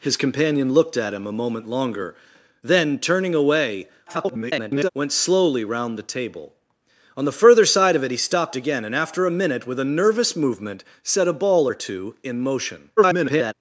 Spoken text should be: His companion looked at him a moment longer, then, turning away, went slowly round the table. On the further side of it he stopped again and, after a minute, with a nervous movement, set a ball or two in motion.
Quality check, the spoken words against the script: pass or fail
fail